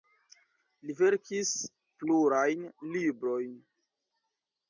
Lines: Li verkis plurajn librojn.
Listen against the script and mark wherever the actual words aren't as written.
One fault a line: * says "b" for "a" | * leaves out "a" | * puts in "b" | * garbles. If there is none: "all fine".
all fine